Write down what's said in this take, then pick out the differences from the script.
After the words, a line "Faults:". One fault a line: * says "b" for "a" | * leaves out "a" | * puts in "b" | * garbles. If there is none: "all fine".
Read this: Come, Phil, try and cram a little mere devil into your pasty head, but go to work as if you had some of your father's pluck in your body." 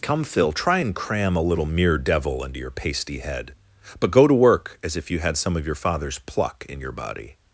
Come, Phil, try and cram a little mere devil into your pasty head, but go to work as if you had some of your father's pluck in your body."
Faults:
all fine